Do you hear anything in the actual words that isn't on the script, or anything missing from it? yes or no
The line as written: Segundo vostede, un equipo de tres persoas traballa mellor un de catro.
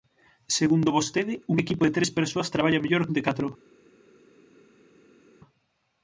no